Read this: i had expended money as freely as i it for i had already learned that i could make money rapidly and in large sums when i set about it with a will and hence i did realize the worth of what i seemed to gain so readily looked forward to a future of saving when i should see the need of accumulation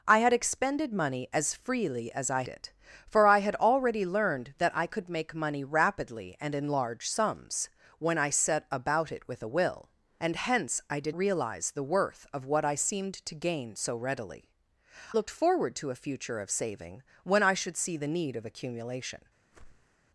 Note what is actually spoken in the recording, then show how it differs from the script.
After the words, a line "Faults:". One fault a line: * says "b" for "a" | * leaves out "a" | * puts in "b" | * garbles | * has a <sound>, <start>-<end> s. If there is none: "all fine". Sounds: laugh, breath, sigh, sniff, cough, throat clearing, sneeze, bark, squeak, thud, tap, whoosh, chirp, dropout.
i had expended money as freely as i it for i had already learned that i could make money rapidly and in large sums when i set about it with a will and hence i did realize the worth of what i seemed to gain so readily looked forward to a future of saving when i should see the need of accumulation
Faults:
* has a whoosh, 19.5-20.0 s